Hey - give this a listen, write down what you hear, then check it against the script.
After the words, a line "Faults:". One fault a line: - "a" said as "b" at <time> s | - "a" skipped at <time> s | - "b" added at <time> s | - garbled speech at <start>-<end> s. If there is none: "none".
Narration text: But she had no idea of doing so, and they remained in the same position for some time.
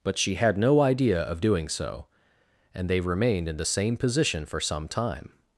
But she had no idea of doing so, and they remained in the same position for some time.
Faults:
none